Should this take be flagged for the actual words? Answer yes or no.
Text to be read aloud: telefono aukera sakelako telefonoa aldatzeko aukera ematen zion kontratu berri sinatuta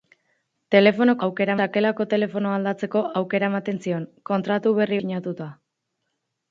no